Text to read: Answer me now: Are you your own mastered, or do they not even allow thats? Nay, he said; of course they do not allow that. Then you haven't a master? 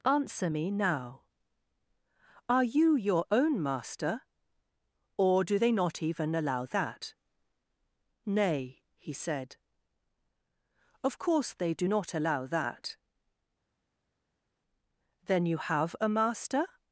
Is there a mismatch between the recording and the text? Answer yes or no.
yes